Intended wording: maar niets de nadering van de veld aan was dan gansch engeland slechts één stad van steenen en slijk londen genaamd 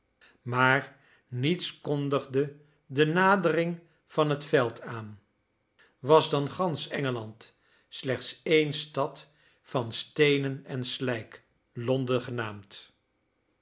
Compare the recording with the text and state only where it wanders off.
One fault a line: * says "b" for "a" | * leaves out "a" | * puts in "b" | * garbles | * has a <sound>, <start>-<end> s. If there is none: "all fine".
* puts in "kondigde"
* says "het" for "de"